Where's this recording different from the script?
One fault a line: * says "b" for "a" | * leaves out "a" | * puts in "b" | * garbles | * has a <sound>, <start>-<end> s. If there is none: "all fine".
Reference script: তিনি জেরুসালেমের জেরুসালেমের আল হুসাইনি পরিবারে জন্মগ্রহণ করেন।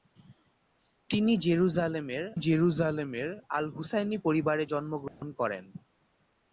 * has a dropout, 5.1-5.2 s